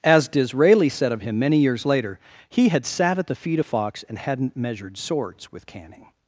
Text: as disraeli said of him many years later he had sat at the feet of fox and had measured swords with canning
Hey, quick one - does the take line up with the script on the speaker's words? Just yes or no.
no